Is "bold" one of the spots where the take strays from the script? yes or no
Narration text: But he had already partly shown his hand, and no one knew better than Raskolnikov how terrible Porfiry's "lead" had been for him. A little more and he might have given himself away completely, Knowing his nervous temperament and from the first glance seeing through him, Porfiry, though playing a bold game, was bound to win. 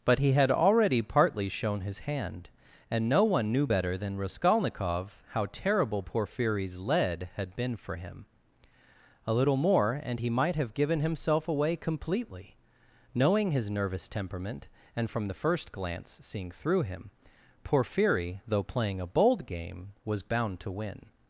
no